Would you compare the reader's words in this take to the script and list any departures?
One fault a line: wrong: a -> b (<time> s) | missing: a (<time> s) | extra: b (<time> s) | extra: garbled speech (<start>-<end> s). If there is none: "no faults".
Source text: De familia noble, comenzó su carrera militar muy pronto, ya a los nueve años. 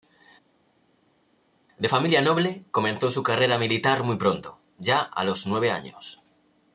no faults